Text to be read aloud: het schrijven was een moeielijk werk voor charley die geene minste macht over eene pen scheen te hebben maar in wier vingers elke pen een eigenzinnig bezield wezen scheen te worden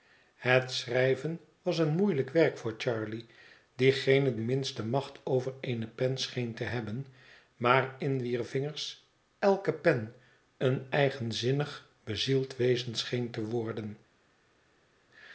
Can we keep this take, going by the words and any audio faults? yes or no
yes